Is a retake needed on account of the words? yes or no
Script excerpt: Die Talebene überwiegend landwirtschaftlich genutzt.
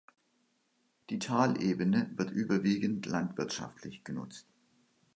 yes